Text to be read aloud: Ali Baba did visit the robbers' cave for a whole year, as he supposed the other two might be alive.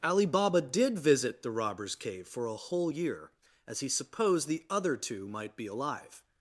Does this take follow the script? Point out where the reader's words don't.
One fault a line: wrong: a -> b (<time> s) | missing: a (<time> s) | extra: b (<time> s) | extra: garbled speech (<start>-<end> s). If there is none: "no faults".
no faults